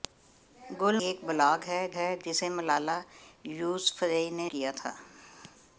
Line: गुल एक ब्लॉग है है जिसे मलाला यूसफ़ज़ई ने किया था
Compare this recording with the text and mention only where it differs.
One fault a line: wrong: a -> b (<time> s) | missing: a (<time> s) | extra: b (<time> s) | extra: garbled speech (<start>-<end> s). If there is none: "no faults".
no faults